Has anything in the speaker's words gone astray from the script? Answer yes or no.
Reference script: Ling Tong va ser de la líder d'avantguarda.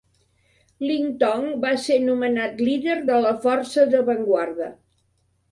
yes